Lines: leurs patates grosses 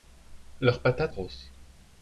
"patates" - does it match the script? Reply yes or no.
yes